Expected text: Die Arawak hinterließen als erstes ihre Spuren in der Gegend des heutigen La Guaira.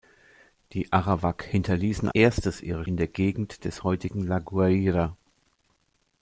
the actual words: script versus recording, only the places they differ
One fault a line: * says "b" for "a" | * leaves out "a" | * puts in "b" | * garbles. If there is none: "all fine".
* leaves out "als"
* leaves out "Spuren"